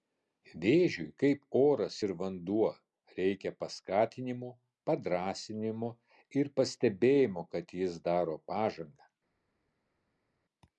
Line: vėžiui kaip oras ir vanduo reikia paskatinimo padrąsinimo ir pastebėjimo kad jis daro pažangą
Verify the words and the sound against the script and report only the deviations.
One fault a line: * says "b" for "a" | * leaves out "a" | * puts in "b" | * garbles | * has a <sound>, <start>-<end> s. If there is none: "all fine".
all fine